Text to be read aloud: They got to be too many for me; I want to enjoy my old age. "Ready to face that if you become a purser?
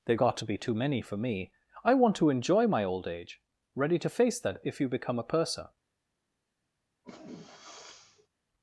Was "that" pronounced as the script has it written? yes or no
yes